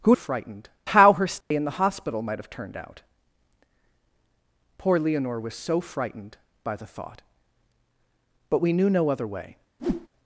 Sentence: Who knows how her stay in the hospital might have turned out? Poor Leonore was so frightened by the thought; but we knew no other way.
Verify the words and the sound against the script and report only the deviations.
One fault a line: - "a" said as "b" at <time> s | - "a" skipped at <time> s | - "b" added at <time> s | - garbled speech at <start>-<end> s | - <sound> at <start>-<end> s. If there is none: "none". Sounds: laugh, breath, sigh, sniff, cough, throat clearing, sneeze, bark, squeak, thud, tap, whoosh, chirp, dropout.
- "knows" said as "frightened" at 0.1 s
- dropout at 1.4-1.5 s
- whoosh at 9.8-10.1 s